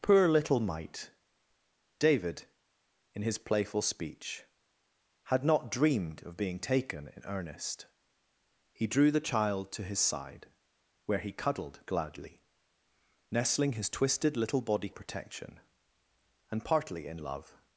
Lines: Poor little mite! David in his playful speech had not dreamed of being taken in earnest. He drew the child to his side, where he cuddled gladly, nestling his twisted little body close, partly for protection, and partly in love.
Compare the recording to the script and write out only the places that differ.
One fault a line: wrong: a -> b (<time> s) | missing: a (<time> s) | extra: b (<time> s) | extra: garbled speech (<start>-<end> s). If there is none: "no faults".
missing: close partly for (14.9 s)